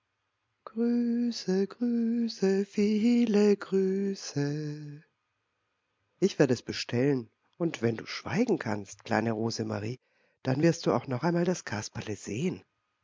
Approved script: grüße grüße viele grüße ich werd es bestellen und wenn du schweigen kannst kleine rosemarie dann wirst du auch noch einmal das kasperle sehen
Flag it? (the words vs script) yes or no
no